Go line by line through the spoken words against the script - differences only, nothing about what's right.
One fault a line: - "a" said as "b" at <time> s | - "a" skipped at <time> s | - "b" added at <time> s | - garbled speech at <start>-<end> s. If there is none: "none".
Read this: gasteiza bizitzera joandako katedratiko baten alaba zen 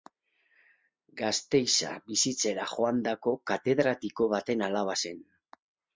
none